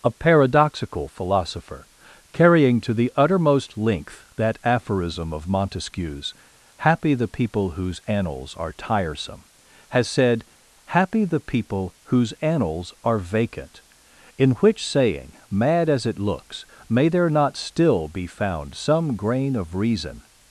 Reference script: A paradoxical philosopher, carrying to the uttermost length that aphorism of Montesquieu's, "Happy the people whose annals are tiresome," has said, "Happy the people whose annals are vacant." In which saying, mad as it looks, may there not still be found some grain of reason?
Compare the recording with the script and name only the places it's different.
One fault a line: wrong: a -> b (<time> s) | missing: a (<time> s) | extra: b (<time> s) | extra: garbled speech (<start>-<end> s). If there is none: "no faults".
no faults